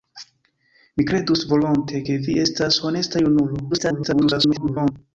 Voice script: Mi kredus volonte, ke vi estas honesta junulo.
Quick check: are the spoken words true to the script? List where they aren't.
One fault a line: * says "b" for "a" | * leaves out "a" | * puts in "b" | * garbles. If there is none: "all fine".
* garbles